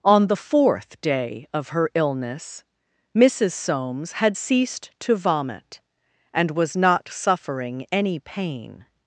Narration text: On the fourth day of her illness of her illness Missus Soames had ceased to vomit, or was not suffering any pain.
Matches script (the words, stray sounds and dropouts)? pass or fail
fail